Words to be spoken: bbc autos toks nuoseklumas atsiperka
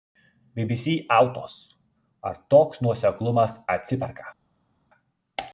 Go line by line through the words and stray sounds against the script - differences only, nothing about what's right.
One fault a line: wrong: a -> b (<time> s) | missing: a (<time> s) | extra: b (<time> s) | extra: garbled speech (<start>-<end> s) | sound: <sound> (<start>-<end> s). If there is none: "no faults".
extra: ar (2.3 s)